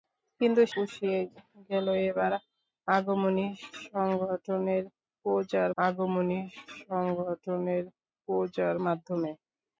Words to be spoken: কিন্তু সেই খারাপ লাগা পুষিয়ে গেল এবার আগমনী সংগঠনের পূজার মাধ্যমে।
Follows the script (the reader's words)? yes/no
no